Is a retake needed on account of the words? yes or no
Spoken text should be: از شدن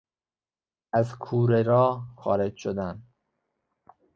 yes